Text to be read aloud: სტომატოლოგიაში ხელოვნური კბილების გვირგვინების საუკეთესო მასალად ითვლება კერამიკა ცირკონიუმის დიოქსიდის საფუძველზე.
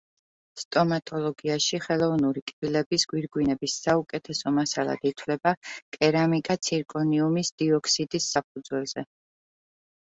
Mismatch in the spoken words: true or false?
false